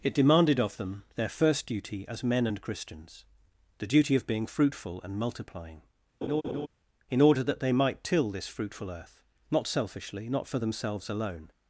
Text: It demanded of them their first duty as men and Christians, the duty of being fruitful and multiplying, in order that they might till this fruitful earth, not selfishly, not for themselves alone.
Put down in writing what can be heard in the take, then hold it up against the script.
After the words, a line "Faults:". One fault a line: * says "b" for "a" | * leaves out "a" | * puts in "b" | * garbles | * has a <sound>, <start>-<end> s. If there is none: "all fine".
It demanded of them their first duty as men and Christians, the duty of being fruitful and multiplying, in order that they might till this fruitful earth, not selfishly, not for themselves alone.
Faults:
* has a laugh, 6.2-6.7 s